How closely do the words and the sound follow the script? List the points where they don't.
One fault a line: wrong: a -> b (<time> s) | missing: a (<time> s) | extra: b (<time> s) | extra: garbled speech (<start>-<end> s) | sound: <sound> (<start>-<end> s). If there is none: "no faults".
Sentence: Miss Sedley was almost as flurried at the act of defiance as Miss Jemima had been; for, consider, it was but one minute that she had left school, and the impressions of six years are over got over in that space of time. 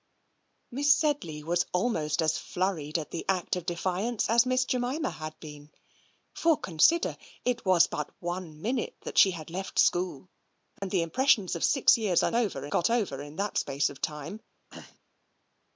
sound: dropout (10.8-10.8 s)
sound: throat clearing (14.7-15.0 s)